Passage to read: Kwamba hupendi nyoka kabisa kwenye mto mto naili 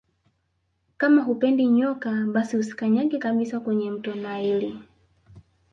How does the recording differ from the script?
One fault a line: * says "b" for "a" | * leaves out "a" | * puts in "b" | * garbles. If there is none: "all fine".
* says "Kama" for "Kwamba"
* puts in "basi usikanyage"
* leaves out "mto"